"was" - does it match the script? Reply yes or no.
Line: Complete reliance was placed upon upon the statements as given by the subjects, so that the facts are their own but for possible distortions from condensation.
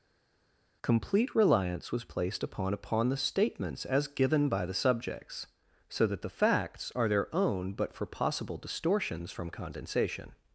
yes